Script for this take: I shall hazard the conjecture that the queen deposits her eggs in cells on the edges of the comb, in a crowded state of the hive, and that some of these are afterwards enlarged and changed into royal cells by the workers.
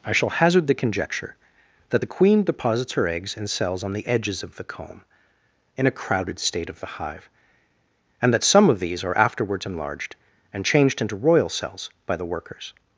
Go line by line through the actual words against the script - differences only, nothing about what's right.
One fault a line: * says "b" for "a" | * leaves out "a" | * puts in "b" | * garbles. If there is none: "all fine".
all fine